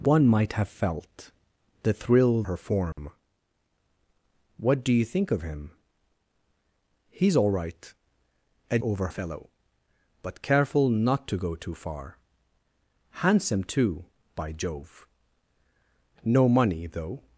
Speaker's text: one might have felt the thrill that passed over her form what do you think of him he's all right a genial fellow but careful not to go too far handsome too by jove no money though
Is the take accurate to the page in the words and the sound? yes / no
no